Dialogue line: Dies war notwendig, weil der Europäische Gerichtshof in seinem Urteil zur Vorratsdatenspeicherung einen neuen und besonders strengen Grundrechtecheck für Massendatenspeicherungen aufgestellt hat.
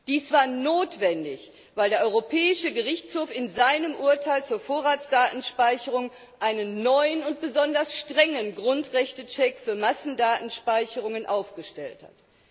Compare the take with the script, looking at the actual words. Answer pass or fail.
pass